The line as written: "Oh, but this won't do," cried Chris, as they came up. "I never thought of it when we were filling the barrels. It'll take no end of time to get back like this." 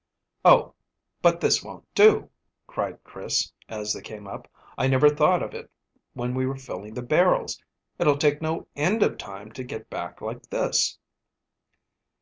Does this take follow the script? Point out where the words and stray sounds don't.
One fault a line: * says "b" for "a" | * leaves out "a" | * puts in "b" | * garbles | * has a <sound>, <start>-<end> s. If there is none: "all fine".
all fine